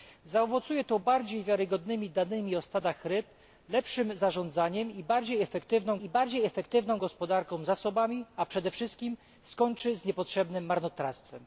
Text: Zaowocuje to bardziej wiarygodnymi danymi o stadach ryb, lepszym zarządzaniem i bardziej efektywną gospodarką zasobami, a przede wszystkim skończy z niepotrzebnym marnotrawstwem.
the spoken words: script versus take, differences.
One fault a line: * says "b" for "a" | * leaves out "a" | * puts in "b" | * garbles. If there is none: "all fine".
* puts in "i bardziej efektywną"